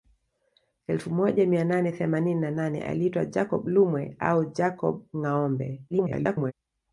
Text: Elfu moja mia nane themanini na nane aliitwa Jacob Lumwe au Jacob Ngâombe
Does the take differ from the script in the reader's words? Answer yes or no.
yes